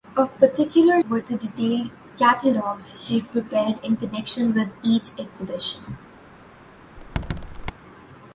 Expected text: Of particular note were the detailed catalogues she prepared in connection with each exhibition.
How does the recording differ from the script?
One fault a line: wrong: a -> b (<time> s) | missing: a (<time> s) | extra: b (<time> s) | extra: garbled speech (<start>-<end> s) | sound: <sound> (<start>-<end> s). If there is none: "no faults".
missing: note (1.0 s)
sound: squeak (7.0-7.7 s)